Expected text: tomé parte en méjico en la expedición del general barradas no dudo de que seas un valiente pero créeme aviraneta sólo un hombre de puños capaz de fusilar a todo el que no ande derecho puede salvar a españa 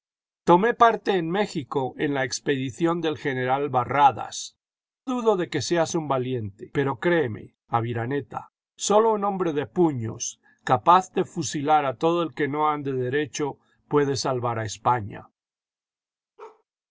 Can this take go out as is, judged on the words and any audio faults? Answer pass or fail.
fail